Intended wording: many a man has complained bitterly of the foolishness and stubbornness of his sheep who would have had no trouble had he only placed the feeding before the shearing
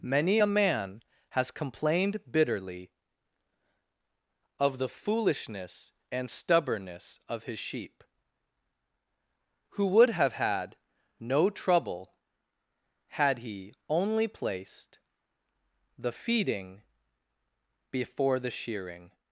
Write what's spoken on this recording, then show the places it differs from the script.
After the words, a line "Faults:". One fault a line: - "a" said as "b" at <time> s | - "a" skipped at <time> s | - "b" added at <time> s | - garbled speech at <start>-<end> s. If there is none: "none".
many a man has complained bitterly of the foolishness and stubbornness of his sheep who would have had no trouble had he only placed the feeding before the shearing
Faults:
none